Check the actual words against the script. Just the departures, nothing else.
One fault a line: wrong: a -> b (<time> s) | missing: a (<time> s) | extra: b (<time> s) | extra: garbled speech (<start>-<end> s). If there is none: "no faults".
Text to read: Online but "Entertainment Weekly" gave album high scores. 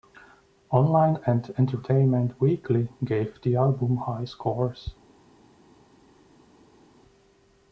wrong: but -> and (1.3 s)
extra: the (3.4 s)